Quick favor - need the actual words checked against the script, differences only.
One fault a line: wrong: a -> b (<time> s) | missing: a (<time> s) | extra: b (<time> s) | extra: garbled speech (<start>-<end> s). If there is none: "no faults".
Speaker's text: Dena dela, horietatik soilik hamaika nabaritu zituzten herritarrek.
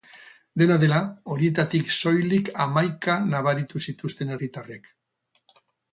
no faults